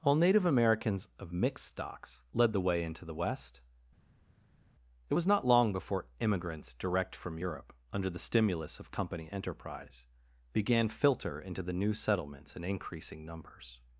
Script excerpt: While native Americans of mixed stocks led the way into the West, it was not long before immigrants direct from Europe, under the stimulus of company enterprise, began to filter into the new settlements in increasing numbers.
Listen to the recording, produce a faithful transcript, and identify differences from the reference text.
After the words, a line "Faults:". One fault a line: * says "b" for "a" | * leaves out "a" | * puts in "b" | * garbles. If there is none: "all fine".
While native Americans of mixed stocks led the way into the West, it was not long before immigrants direct from Europe, under the stimulus of company enterprise, began filter into the new settlements in increasing numbers.
Faults:
* leaves out "to"